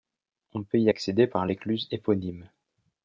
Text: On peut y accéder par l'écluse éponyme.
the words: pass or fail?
pass